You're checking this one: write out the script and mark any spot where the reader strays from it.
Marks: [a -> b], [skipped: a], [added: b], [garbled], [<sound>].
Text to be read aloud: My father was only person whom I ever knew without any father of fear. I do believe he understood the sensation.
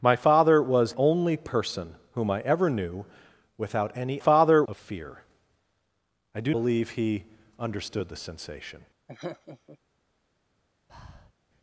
My father was only person whom I ever knew without any father of fear. I do believe he understood the sensation. [laugh] [breath]